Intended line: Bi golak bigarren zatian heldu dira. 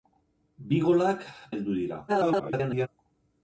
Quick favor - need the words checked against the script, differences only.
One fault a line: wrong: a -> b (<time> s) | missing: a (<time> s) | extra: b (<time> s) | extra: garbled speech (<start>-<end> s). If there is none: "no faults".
missing: bigarren zatian (1.3 s)
extra: garbled speech (2.1-2.9 s)